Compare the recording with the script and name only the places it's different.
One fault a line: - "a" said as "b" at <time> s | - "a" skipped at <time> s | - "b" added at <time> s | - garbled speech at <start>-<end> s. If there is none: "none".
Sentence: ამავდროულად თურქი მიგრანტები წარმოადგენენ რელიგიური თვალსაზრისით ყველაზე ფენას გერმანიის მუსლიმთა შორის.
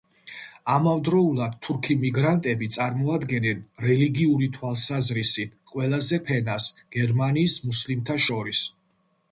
none